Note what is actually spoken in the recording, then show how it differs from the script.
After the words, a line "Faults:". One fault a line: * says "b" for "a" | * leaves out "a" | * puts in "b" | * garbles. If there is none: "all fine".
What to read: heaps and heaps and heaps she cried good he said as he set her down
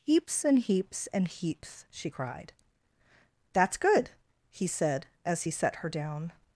heaps and heaps and heaps she cried that's good he said as he set her down
Faults:
* puts in "that's"